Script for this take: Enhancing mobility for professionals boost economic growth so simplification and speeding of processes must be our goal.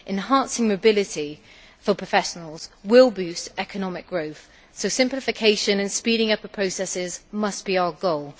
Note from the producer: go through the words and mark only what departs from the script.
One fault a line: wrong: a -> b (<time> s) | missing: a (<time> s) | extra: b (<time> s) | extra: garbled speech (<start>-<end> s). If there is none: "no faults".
extra: will (2.8 s)
extra: up (6.3 s)